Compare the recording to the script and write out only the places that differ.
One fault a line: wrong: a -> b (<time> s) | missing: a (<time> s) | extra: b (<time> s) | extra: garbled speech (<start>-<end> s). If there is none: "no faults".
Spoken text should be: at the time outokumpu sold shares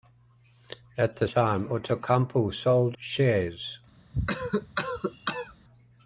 no faults